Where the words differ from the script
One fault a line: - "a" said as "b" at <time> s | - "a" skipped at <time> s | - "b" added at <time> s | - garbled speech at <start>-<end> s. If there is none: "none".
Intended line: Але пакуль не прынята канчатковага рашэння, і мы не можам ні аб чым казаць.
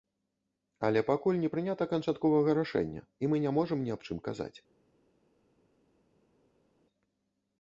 none